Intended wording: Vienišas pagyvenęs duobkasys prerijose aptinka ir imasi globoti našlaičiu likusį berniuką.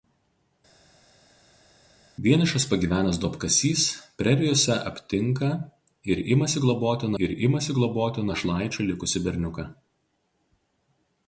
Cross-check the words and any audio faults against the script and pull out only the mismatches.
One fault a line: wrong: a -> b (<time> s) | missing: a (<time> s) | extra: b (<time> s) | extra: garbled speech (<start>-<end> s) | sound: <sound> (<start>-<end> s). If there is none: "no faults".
extra: ir imasi globoti (7.2 s)